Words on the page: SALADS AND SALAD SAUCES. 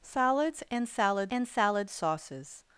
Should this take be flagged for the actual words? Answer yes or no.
yes